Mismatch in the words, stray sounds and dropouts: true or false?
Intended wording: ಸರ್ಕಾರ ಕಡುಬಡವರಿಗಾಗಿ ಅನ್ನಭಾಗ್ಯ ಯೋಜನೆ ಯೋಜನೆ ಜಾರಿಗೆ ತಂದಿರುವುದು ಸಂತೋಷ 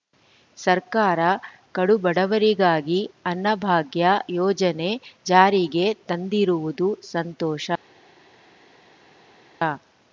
true